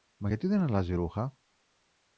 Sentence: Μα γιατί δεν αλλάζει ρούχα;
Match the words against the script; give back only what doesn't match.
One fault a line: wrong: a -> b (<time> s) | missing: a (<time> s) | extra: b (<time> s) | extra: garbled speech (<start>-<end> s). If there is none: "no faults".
no faults